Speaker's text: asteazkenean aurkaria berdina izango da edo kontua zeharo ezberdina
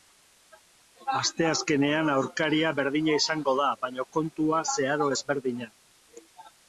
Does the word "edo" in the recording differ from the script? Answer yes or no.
yes